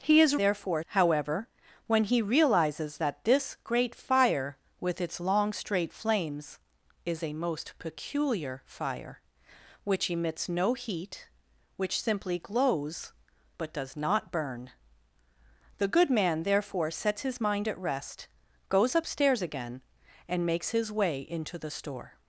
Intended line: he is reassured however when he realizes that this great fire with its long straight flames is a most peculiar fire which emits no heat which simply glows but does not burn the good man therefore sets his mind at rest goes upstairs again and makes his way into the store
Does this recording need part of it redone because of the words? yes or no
yes